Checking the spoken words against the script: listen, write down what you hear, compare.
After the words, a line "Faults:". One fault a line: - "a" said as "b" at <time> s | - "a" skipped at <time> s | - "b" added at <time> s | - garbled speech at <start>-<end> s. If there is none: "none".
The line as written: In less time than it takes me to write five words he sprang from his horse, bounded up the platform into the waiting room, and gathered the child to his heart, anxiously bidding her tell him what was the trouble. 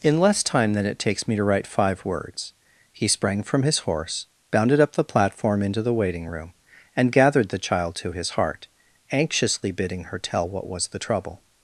In less time than it takes me to write five words he sprang from his horse, bounded up the platform into the waiting room, and gathered the child to his heart, anxiously bidding her tell what was the trouble.
Faults:
- "him" skipped at 10.5 s